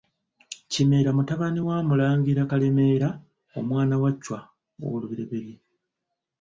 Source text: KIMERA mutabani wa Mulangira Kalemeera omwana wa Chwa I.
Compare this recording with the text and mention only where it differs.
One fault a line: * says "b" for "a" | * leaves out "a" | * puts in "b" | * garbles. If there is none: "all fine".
all fine